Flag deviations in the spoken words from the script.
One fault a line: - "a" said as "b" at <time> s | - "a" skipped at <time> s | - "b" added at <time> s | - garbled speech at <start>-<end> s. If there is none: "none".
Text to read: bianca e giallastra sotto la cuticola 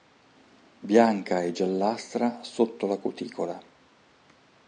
none